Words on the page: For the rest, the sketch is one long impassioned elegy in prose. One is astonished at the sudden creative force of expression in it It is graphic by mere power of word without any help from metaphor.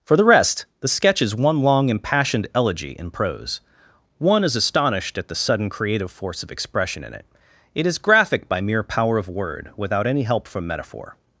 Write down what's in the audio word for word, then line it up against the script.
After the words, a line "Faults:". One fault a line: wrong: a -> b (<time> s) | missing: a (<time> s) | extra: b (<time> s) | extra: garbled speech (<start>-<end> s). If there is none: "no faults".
For the rest, the sketch is one long impassioned elegy in prose. One is astonished at the sudden creative force of expression in it It is graphic by mere power of word without any help from metaphor.
Faults:
no faults